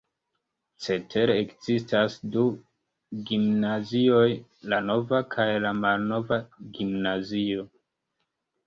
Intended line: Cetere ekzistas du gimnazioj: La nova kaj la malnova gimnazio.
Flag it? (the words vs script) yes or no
no